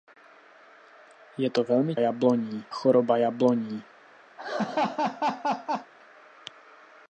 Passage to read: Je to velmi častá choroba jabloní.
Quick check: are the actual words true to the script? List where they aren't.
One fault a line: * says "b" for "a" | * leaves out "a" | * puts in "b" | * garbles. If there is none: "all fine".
* says "jabloní" for "častá"